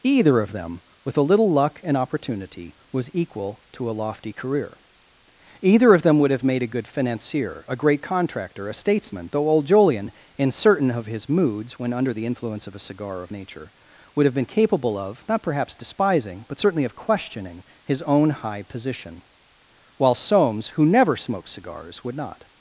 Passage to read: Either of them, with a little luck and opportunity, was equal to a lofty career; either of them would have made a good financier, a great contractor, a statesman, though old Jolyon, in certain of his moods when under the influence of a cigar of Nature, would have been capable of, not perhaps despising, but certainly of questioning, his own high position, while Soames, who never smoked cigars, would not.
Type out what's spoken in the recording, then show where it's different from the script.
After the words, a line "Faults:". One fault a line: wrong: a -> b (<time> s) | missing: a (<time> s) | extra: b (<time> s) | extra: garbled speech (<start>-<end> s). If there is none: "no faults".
Either of them, with a little luck and opportunity, was equal to a lofty career; either of them would have made a good financier, a great contractor, a statesman, though old Jolyon, in certain of his moods when under the influence of a cigar of Nature, would have been capable of, not perhaps despising, but certainly of questioning, his own high position, while Soames, who never smoked cigars, would not.
Faults:
no faults